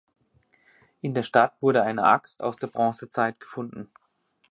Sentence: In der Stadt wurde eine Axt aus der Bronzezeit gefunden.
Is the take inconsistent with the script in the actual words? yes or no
no